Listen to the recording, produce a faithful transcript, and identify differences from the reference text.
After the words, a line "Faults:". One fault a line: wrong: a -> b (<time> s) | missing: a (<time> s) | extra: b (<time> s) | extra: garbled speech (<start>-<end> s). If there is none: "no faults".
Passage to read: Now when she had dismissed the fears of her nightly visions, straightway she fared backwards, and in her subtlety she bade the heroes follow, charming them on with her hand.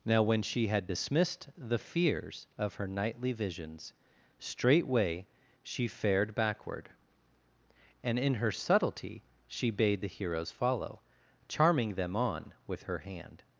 Now when she had dismissed the fears of her nightly visions, straightway she fared backward, and in her subtlety she bade the heroes follow, charming them on with her hand.
Faults:
wrong: backwards -> backward (6.3 s)